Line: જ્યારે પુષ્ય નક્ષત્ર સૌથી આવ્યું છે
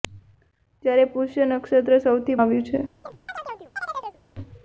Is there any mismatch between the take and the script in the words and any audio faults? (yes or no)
yes